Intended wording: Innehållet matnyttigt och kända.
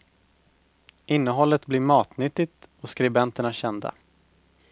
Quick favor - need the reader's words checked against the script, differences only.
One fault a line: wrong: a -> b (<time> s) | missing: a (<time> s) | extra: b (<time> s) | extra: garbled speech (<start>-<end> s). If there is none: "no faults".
extra: blir (1.6 s)
extra: skribenterna (2.9 s)